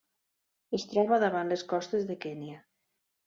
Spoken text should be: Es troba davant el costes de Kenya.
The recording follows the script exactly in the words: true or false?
false